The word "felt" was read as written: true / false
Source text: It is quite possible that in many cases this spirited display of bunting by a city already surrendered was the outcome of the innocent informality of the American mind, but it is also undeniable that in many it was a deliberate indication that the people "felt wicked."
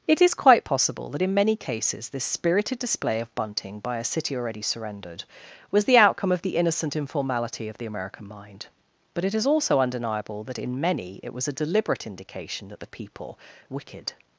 false